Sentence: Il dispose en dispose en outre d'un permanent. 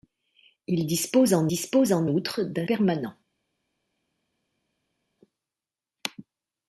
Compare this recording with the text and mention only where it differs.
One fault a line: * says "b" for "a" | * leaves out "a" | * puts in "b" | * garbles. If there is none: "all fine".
all fine